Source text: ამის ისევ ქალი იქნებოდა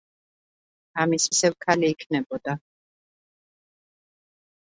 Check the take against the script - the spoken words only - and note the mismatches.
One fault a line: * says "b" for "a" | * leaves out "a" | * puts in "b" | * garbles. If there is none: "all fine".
all fine